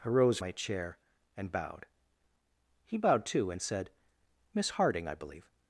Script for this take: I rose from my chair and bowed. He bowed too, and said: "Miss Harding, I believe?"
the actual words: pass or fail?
fail